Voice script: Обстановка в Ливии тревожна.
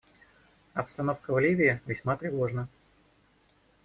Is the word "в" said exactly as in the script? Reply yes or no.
yes